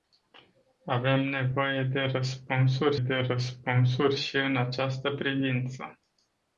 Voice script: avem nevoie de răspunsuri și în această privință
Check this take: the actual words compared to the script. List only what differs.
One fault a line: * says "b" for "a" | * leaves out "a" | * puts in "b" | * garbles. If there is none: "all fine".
* puts in "de răspunsuri"